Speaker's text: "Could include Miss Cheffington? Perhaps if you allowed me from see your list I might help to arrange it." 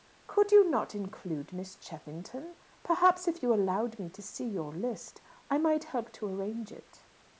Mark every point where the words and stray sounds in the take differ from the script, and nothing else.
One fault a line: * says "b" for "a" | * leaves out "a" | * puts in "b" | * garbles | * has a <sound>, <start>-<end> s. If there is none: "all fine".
* puts in "you not"
* says "to" for "from"